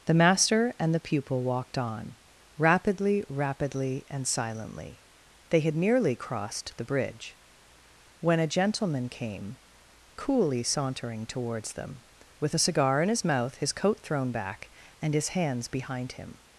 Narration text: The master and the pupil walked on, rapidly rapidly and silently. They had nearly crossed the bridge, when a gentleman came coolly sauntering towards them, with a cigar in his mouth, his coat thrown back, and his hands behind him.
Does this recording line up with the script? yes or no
yes